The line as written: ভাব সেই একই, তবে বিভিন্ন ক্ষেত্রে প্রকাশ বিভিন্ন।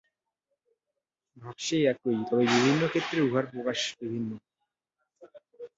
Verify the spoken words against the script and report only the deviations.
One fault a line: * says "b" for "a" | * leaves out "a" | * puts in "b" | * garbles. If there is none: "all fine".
* puts in "উহার"